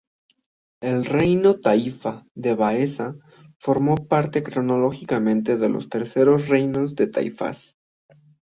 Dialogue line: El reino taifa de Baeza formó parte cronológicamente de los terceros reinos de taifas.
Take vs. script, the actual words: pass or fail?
pass